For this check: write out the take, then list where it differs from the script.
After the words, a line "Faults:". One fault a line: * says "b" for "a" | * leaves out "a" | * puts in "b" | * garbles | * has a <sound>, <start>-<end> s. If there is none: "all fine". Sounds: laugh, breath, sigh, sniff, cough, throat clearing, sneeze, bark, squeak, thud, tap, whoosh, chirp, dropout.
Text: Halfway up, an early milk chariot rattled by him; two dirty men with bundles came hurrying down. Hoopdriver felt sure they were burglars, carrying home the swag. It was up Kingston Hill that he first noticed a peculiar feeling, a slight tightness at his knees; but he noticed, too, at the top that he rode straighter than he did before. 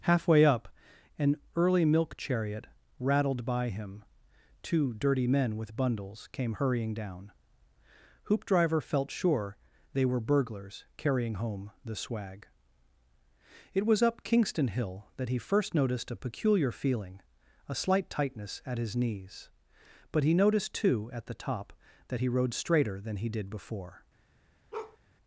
Halfway up, an early milk chariot rattled by him; two dirty men with bundles came hurrying down. Hoopdriver felt sure they were burglars, carrying home the swag. It was up Kingston Hill that he first noticed a peculiar feeling, a slight tightness at his knees; but he noticed, too, at the top that he rode straighter than he did before.
Faults:
* has a bark, 24.7-25.0 s